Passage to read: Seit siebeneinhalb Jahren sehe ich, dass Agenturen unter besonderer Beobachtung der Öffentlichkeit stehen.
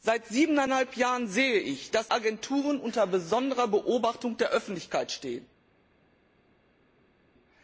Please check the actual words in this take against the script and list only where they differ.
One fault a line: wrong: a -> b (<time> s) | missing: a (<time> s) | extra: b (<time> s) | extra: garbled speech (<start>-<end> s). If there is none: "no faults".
no faults